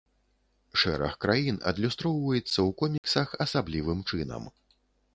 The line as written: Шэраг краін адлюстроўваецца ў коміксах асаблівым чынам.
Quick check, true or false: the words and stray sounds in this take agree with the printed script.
false